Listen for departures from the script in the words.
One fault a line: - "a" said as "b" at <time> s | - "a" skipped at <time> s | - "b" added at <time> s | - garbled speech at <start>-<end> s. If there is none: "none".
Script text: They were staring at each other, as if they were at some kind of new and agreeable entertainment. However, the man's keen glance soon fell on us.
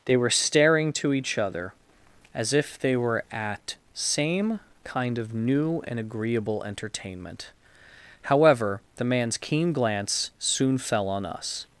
- "at" said as "to" at 0.9 s
- "some" said as "same" at 3.9 s